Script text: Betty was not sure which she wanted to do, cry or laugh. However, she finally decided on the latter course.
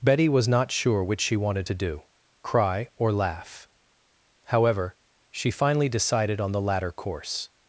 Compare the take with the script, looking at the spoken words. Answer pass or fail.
pass